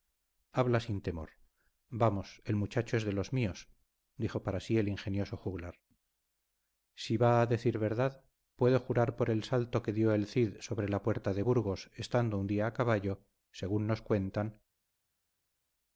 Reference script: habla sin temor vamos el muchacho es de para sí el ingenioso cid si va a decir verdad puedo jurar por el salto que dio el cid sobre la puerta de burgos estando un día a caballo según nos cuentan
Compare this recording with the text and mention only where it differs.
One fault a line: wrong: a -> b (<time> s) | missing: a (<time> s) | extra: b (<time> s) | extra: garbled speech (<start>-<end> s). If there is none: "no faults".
extra: los míos dijo (3.1 s)
wrong: cid -> juglar (5.4 s)